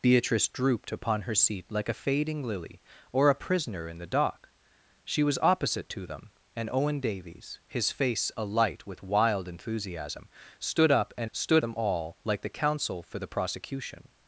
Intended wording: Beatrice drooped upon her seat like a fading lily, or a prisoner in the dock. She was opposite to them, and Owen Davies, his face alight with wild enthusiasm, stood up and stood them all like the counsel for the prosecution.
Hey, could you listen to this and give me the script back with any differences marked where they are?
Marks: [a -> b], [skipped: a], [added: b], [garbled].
Beatrice drooped upon her seat like a fading lily, or a prisoner in the dock. She was opposite to them, and Owen Davies, his face alight with wild enthusiasm, stood up and stood them all like the counsel for the prosecution.